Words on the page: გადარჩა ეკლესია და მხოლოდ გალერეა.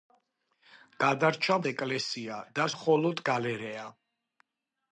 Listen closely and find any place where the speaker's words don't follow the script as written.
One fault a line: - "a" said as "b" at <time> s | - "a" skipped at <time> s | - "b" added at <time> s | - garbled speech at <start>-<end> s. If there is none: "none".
none